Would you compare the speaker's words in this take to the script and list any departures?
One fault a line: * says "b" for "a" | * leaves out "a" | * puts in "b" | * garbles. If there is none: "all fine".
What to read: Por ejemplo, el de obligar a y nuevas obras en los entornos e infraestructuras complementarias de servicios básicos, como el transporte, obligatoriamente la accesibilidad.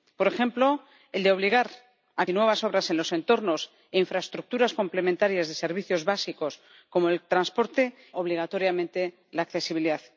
all fine